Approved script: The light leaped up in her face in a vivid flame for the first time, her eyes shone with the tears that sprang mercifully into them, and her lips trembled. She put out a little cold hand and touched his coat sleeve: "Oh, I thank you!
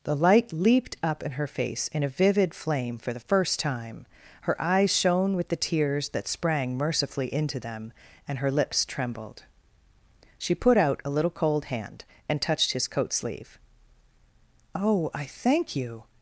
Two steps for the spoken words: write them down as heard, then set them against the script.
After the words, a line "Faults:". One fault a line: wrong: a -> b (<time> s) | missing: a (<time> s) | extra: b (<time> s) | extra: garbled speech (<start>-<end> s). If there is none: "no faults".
The light leaped up in her face in a vivid flame for the first time, her eyes shone with the tears that sprang mercifully into them, and her lips trembled. She put out a little cold hand and touched his coat sleeve: "Oh, I thank you!
Faults:
no faults